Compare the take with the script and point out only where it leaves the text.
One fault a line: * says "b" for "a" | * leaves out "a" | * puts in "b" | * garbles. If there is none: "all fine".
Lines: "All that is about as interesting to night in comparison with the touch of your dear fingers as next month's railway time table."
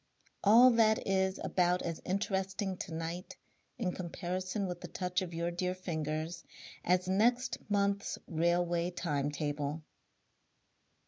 all fine